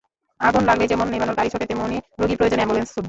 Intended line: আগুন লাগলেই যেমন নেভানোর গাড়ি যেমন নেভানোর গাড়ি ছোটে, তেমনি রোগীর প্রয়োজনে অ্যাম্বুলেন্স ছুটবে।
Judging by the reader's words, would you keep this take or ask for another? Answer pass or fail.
fail